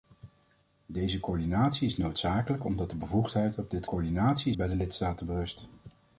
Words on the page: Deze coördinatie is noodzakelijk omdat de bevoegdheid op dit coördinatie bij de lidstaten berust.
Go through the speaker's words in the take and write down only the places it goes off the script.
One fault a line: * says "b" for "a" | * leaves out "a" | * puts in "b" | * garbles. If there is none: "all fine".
all fine